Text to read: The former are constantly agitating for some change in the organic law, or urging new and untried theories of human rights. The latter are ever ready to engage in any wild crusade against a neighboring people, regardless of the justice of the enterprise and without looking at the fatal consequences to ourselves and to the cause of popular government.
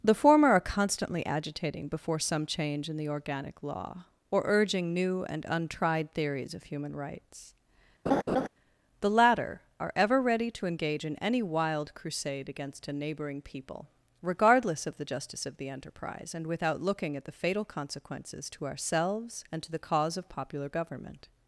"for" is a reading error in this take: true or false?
true